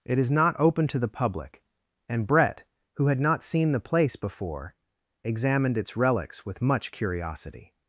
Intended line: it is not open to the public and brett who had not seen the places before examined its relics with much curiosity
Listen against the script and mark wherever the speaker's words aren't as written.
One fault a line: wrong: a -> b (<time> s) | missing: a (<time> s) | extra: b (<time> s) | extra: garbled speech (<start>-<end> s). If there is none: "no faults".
wrong: places -> place (3.8 s)